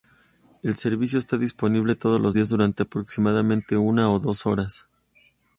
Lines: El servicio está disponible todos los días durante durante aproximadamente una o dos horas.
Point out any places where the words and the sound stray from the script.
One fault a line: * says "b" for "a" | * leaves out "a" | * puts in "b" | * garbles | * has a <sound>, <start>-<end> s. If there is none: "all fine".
* leaves out "durante"